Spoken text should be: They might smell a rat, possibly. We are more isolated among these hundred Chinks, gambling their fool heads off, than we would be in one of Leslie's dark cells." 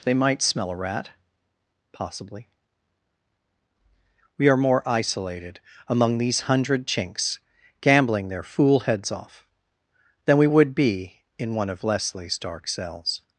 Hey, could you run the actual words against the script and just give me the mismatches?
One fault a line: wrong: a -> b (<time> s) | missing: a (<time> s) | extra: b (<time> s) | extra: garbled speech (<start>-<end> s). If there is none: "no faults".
no faults